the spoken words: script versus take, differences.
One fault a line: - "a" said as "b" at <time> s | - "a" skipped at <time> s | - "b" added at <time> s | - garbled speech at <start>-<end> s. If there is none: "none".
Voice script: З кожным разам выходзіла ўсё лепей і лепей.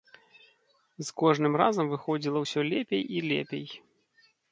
none